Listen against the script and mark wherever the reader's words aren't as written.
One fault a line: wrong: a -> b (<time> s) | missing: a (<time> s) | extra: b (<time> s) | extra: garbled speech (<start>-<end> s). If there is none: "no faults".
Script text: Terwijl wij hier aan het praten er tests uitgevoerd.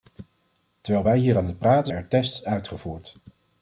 no faults